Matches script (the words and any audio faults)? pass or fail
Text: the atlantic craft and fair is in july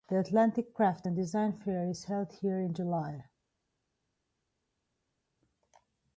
fail